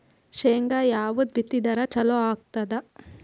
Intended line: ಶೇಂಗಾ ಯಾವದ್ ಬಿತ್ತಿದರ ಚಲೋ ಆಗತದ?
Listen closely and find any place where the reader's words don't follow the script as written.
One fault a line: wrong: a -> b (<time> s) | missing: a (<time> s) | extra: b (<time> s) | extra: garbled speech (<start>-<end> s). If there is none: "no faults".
no faults